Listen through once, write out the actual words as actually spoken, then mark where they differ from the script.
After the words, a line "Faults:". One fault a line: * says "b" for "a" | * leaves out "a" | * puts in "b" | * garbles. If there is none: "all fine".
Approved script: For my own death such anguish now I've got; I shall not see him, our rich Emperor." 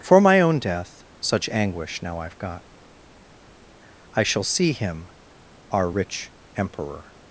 For my own death such anguish now I've got; I shall see him, our rich Emperor."
Faults:
* leaves out "not"